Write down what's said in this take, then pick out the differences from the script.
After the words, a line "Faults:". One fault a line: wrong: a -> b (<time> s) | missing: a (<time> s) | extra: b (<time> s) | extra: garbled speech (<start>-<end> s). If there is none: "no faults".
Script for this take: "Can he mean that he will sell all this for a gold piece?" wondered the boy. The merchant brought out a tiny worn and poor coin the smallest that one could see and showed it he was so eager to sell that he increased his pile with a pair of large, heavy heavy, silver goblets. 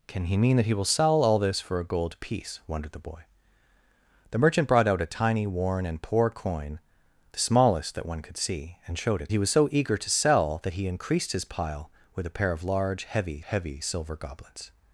"Can he mean that he will sell all this for a gold piece?" wondered the boy. The merchant brought out a tiny worn and poor coin the smallest that one could see and showed it he was so eager to sell that he increased his pile with a pair of large, heavy heavy, silver goblets.
Faults:
no faults